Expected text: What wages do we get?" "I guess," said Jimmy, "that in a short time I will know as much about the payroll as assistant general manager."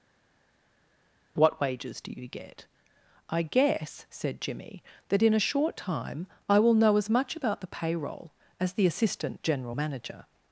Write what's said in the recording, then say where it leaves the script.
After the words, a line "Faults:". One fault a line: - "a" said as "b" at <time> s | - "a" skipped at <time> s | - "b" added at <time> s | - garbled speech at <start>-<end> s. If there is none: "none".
What wages do you get?" "I guess," said Jimmy, "that in a short time I will know as much about the payroll as the assistant general manager."
Faults:
- "we" said as "you" at 2.1 s
- "the" added at 8.7 s